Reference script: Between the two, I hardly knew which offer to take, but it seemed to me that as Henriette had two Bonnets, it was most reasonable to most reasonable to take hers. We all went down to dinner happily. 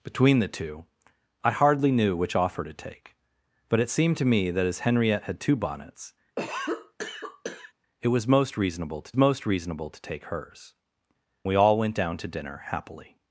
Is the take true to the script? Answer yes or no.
yes